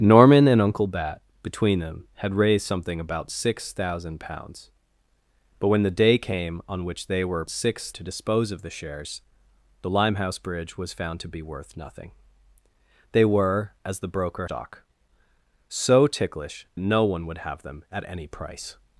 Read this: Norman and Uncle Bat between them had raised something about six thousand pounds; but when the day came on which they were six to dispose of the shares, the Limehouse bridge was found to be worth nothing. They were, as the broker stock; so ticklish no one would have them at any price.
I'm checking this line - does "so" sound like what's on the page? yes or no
yes